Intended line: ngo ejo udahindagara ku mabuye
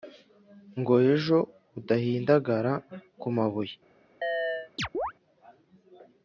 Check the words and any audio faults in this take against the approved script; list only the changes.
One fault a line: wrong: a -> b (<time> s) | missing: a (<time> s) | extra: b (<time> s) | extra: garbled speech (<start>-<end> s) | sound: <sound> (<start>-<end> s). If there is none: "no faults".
sound: chirp (4.2-5.1 s)